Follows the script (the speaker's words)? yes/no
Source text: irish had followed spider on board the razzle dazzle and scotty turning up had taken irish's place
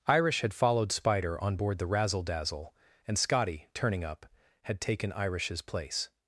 yes